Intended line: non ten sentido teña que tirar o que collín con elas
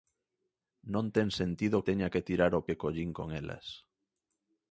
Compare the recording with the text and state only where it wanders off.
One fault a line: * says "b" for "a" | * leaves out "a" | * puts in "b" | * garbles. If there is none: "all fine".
all fine